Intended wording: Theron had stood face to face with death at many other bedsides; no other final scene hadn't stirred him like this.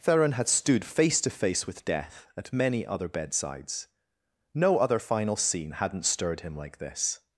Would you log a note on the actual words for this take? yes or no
no